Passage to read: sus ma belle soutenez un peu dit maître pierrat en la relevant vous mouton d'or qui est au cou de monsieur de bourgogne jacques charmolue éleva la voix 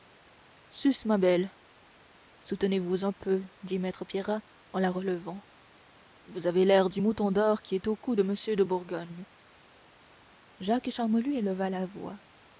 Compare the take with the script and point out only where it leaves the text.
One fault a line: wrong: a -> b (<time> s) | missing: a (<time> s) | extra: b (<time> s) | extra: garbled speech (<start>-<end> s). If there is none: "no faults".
extra: vous (2.8 s)
extra: avez l'air du (6.5 s)